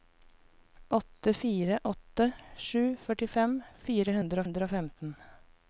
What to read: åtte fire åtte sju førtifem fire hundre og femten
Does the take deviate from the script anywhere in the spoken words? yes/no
yes